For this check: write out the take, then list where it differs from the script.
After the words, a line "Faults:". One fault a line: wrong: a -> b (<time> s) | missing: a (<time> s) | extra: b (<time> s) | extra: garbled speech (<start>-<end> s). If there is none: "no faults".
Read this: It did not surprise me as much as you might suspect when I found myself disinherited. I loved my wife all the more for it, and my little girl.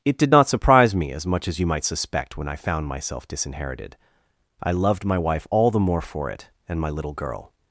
It did not surprise me as much as you might suspect when I found myself disinherited. I loved my wife all the more for it, and my little girl.
Faults:
no faults